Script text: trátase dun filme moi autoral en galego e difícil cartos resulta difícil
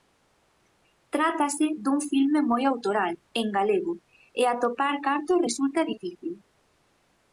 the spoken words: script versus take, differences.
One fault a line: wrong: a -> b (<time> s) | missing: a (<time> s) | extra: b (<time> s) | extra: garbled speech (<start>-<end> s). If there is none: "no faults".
wrong: difícil -> atopar (4.5 s)